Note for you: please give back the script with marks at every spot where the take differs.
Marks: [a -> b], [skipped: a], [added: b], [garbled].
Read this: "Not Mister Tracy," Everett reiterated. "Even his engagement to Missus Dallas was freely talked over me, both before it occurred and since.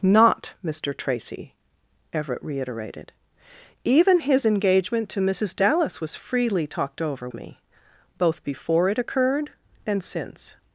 "Not Mister Tracy," Everett reiterated. "Even his engagement to Missus Dallas was freely talked over me, both before it occurred and since.